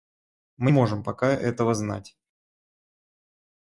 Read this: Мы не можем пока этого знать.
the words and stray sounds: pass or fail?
fail